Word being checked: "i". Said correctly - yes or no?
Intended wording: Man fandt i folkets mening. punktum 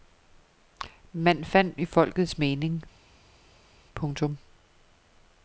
yes